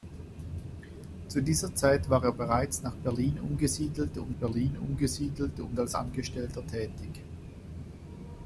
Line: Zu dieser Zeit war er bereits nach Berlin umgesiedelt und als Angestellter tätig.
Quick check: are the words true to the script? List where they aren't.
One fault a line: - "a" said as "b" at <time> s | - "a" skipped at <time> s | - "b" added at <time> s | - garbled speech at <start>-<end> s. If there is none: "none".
- "Berlin umgesiedelt und" added at 4.3 s